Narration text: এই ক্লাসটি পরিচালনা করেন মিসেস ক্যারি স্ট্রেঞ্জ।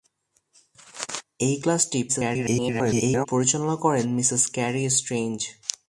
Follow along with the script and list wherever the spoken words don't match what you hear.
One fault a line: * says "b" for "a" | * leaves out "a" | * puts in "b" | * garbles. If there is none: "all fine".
* garbles